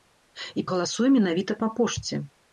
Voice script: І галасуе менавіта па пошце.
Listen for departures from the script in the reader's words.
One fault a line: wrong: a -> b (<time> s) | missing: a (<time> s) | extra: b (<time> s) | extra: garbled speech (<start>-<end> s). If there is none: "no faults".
no faults